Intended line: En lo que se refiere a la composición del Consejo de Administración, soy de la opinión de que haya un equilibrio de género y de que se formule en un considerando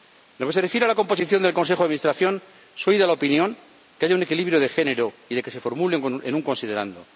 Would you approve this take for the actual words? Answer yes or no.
yes